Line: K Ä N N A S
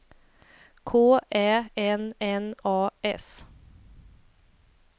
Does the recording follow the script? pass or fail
pass